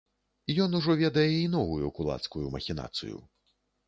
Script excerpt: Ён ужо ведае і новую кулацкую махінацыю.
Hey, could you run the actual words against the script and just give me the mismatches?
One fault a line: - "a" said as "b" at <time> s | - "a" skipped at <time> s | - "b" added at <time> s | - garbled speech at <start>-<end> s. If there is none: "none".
none